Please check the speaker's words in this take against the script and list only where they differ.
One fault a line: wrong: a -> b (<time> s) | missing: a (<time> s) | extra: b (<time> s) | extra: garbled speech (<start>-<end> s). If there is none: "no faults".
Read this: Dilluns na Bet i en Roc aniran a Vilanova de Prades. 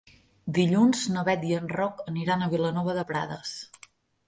no faults